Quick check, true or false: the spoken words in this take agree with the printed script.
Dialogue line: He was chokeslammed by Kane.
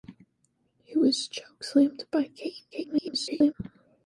false